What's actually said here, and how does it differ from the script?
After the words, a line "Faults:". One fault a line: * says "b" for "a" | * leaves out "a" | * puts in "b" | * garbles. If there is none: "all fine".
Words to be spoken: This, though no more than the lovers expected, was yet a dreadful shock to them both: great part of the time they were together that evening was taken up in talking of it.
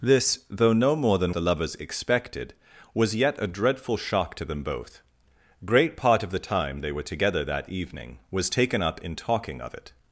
This, though no more than the lovers expected, was yet a dreadful shock to them both: great part of the time they were together that evening was taken up in talking of it.
Faults:
all fine